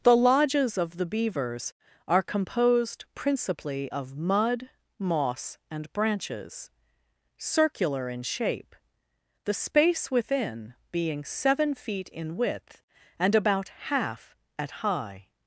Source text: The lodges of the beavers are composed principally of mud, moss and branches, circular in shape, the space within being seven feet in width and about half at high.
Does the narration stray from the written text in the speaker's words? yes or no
no